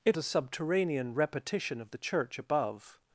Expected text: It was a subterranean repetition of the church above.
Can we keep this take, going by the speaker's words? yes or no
no